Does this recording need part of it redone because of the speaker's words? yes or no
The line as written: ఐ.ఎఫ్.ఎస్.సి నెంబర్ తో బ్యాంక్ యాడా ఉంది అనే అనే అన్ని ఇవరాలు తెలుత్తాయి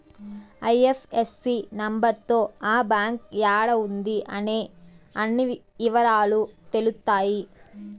yes